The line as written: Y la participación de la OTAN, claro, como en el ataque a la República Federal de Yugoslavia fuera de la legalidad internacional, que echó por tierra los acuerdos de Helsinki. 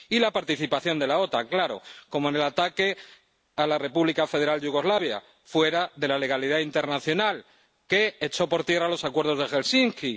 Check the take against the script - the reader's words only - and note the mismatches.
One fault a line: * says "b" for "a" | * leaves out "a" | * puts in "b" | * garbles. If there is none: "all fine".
all fine